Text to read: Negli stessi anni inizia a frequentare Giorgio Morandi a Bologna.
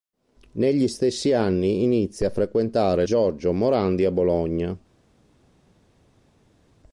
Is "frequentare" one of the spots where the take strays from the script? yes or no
no